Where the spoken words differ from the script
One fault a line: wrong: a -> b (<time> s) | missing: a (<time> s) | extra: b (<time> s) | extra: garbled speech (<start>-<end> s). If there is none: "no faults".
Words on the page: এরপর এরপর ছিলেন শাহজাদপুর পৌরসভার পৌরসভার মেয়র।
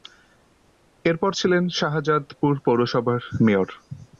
missing: এরপর (1.3 s)
missing: পৌরসভার (3.2 s)